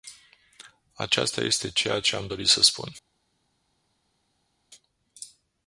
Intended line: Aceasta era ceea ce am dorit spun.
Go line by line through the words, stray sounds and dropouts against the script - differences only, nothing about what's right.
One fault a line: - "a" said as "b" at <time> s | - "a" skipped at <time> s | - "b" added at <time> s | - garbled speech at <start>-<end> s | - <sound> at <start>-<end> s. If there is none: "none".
- "era" said as "este" at 1.4 s
- "să" added at 2.5 s